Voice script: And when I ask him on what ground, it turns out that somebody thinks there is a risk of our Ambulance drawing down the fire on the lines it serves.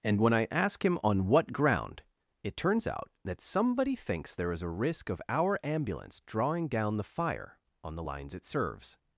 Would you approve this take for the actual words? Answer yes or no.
yes